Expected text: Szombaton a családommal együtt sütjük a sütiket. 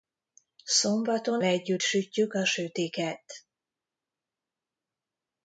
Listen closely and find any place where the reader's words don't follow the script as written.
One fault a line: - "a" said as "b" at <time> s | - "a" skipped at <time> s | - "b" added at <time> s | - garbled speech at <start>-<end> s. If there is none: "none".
- "a családommal" skipped at 1.4 s